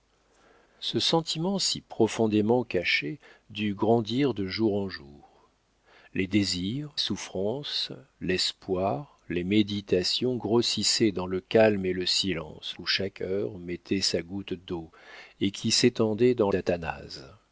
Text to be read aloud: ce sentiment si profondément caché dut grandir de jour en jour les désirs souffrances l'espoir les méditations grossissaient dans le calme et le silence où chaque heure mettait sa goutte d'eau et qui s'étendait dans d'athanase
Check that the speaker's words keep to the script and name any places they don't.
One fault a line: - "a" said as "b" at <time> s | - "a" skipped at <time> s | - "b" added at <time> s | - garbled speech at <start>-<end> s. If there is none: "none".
none